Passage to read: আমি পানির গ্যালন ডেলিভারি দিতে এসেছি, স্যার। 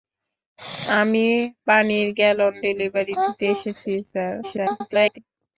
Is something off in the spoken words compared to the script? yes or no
yes